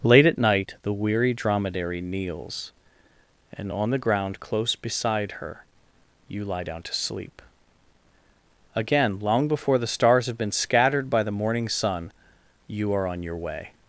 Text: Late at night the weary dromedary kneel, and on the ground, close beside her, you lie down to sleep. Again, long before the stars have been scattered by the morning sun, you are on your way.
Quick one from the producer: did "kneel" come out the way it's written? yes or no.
no